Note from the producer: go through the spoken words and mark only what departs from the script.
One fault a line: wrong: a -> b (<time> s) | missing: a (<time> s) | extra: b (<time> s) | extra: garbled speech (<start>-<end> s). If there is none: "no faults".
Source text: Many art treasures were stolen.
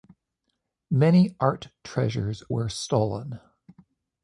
no faults